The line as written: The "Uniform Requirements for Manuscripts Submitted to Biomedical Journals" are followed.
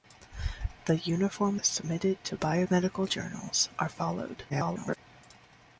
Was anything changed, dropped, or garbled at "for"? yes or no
yes